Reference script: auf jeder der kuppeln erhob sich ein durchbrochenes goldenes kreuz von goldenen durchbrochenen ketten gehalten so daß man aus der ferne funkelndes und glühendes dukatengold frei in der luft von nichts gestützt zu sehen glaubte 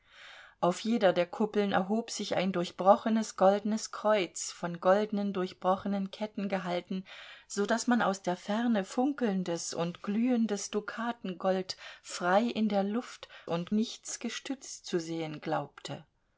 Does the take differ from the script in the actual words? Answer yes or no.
yes